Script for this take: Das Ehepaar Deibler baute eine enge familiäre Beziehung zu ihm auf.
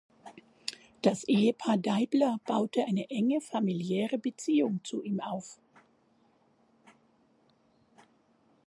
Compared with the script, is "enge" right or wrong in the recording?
right